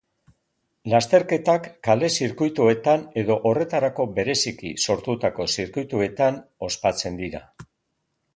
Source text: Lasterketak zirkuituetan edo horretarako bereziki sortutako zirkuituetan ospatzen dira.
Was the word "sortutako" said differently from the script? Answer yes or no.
no